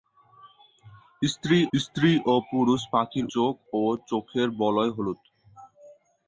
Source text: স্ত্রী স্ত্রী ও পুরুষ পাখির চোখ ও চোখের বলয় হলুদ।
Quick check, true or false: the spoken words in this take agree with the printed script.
true